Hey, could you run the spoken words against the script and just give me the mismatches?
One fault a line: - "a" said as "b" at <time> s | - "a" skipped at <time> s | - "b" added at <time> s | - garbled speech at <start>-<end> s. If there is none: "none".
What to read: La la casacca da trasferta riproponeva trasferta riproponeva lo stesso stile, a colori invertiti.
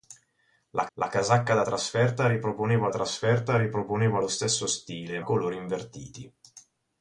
none